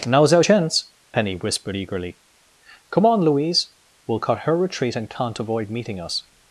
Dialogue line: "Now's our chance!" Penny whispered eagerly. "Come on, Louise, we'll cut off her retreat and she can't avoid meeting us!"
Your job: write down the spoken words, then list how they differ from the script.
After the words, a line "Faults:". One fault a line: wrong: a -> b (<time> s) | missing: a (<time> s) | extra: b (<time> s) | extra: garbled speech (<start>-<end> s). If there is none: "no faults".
"Now's our chance!" Penny whispered eagerly. "Come on, Louise, we'll cut her retreat and can't avoid meeting us!"
Faults:
missing: off (4.4 s)
missing: she (5.1 s)